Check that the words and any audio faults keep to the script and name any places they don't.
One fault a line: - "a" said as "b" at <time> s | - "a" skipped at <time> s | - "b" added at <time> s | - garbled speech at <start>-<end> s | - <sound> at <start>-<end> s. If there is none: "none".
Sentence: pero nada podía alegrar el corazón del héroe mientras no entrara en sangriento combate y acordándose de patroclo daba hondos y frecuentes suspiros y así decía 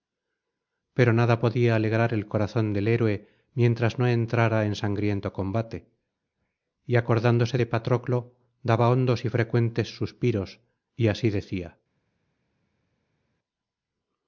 none